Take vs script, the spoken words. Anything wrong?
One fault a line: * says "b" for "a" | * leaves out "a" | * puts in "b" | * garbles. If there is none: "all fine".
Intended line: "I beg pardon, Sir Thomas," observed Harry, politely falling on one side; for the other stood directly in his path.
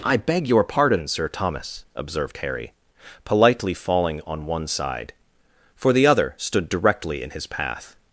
* puts in "your"